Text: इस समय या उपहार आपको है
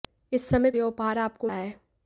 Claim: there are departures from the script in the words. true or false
false